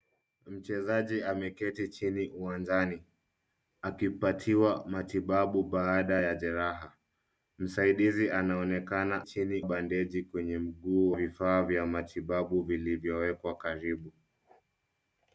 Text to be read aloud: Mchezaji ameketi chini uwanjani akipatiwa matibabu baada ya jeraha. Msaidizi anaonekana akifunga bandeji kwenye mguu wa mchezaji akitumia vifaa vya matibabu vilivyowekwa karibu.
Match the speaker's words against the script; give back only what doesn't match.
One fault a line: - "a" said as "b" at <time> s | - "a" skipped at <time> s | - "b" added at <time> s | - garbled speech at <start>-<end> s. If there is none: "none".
- "akifunga" said as "chini" at 9.2 s
- "wa mchezaji akitumia" skipped at 11.1 s